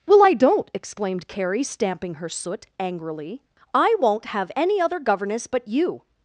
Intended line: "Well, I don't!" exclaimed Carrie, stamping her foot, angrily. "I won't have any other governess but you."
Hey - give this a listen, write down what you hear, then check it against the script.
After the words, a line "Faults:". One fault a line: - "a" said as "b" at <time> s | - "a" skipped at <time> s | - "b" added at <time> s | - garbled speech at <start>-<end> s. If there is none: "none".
"Well, I don't!" exclaimed Carrie, stamping her soot, angrily. "I won't have any other governess but you."
Faults:
- "foot" said as "soot" at 2.3 s